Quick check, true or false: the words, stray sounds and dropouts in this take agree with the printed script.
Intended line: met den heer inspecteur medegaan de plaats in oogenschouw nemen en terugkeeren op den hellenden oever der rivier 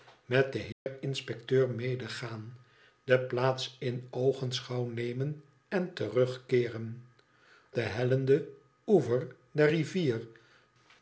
false